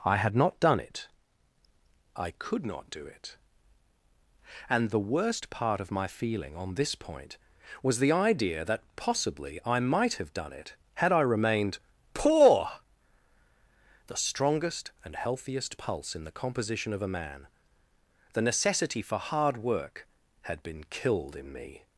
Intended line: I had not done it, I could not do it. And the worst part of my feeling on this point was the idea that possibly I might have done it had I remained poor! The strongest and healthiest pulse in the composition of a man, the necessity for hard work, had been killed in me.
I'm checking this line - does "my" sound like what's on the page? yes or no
yes